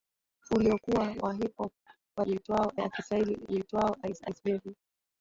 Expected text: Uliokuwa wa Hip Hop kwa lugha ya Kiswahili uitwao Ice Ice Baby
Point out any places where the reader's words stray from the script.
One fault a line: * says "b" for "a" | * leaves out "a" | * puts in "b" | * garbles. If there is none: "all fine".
* says "uitwao" for "lugha"